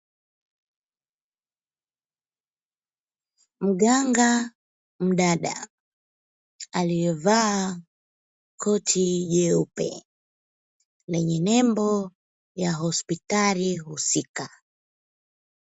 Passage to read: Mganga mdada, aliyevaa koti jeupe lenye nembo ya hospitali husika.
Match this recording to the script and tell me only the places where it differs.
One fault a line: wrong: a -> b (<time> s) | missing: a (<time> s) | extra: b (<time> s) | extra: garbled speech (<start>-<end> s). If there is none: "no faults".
no faults